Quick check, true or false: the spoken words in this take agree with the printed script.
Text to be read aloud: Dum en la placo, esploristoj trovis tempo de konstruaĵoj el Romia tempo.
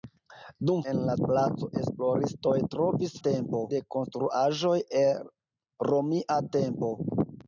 true